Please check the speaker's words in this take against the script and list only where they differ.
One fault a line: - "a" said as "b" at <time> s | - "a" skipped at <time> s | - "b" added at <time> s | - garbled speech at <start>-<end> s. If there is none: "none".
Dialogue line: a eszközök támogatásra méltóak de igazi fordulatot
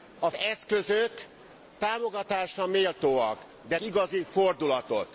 none